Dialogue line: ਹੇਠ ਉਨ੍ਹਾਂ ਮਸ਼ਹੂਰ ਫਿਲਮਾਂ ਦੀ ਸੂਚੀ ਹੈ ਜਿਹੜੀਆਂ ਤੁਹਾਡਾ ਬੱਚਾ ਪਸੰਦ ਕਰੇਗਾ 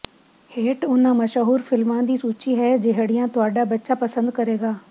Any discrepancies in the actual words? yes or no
no